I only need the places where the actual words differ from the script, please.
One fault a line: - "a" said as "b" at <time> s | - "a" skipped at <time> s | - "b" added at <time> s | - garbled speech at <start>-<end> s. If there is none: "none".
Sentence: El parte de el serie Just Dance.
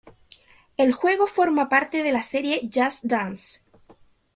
- "juego forma" added at 0.9 s
- "el" said as "la" at 2.1 s